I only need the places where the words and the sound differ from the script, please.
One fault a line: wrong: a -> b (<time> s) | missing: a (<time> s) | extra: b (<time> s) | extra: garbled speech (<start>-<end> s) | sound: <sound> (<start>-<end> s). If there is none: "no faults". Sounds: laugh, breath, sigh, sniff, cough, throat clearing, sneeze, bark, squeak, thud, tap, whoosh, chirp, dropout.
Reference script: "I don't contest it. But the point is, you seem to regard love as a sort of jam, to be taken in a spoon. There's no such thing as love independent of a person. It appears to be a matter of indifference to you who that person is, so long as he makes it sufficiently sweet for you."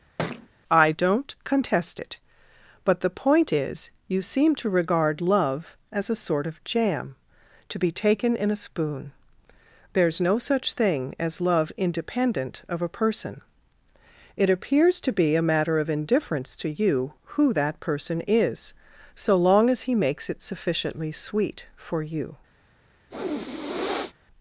sound: thud (0.2-0.5 s)
sound: sniff (23.1-24.2 s)